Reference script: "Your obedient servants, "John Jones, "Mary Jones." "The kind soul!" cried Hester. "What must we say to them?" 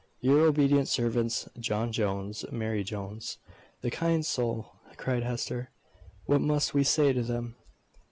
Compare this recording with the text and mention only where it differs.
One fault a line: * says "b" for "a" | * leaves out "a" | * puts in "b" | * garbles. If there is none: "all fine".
all fine